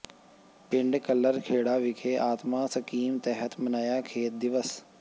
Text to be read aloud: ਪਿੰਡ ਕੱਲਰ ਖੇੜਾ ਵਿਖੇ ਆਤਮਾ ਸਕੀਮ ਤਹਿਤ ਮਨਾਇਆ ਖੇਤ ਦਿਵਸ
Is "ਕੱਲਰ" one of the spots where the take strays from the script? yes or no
no